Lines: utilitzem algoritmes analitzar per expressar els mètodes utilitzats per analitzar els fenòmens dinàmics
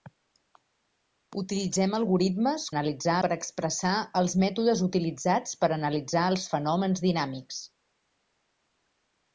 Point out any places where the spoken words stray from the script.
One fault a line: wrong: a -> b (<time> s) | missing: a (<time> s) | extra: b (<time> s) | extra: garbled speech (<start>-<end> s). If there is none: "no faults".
no faults